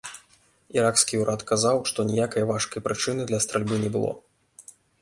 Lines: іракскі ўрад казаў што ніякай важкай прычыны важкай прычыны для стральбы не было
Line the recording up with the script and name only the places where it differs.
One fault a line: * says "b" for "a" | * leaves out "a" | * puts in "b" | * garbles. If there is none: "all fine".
* leaves out "важкай прычыны"